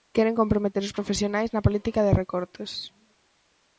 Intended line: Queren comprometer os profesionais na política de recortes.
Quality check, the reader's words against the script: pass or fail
pass